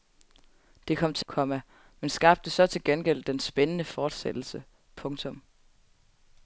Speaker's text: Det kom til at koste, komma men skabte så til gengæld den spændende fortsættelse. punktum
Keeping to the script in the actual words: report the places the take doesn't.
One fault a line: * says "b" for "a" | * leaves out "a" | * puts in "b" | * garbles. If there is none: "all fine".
* leaves out "at koste"